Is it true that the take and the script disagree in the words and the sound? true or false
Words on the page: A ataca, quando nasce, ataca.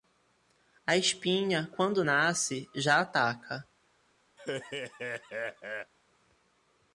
true